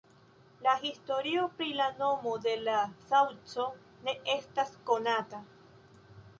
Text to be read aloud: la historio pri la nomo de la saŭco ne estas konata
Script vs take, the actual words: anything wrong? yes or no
no